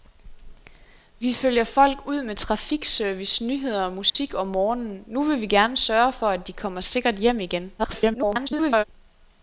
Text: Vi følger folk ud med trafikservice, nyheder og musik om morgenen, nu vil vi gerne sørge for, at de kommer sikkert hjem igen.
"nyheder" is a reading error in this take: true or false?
false